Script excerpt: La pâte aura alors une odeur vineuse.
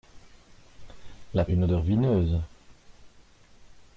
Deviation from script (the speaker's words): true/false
true